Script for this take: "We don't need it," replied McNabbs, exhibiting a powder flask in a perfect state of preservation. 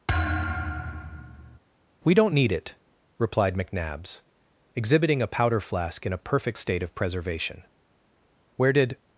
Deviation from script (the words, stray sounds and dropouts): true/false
true